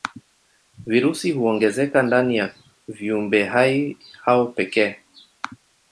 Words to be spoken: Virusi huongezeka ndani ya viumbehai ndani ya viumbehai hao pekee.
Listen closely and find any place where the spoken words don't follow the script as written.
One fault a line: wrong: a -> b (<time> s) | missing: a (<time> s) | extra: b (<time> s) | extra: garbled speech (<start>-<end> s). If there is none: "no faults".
missing: ndani ya viumbehai (4.0 s)